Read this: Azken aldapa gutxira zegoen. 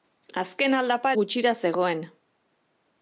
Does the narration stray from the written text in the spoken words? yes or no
no